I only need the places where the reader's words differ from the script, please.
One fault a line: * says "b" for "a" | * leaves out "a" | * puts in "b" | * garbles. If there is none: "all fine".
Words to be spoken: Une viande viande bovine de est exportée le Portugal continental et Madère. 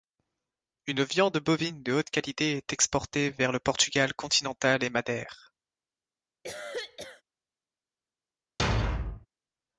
* leaves out "viande"
* puts in "haute qualité"
* puts in "vers"